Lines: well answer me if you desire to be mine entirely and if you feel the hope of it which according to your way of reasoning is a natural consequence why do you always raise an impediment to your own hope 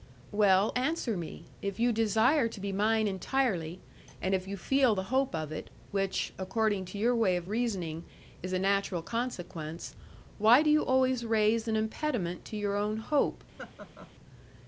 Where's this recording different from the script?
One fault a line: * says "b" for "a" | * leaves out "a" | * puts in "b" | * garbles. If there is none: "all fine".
all fine